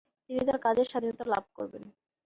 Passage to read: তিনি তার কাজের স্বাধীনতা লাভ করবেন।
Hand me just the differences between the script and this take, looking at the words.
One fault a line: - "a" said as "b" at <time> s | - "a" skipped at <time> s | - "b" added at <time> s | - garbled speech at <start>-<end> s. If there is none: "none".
none